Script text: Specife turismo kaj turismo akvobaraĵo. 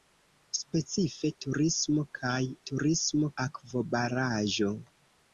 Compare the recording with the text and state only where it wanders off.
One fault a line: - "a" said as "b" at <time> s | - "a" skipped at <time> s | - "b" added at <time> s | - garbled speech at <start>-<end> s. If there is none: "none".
none